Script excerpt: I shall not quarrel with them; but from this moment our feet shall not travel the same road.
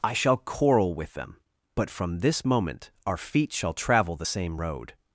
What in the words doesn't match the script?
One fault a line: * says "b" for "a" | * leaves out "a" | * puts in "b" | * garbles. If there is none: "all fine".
* leaves out "not"
* leaves out "not"